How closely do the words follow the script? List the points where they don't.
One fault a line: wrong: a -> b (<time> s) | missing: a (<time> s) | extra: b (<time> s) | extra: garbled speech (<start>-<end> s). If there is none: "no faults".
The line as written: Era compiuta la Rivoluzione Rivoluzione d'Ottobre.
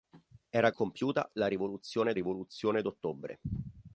no faults